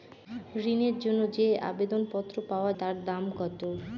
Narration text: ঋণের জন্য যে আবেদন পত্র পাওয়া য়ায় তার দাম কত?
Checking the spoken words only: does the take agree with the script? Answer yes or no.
no